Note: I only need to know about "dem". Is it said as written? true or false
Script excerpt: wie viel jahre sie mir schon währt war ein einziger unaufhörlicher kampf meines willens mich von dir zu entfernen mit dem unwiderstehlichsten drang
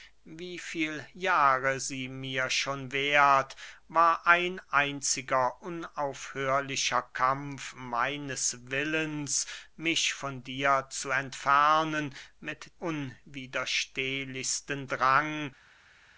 false